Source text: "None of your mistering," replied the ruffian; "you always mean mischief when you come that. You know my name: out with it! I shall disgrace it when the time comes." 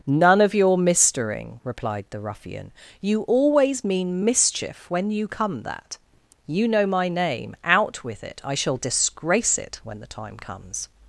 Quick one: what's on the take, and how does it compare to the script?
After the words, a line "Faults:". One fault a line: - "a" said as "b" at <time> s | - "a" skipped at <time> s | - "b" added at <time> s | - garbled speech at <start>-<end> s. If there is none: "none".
"None of your mistering," replied the ruffian; "you always mean mischief when you come that. You know my name: out with it! I shall disgrace it when the time comes."
Faults:
none